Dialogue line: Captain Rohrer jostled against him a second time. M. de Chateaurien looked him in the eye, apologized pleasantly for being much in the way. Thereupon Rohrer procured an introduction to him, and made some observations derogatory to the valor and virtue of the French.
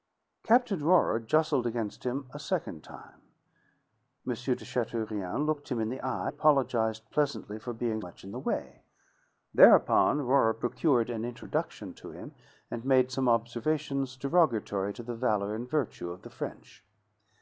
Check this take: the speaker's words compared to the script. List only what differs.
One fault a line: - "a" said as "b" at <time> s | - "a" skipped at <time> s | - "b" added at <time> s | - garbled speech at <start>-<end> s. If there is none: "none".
none